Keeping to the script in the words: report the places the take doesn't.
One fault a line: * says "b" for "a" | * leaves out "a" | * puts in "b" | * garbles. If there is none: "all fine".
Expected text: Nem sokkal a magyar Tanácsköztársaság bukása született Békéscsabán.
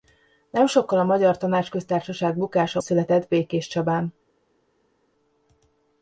all fine